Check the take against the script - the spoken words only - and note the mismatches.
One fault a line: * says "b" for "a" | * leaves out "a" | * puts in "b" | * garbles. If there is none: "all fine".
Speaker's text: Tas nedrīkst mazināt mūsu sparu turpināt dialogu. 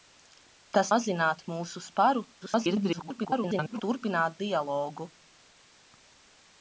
* leaves out "nedrīkst"
* garbles